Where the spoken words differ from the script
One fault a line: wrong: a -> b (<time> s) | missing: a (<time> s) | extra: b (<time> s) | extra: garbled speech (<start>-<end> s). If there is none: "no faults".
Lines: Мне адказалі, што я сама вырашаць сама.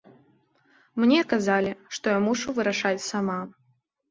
wrong: сама -> мушу (2.3 s)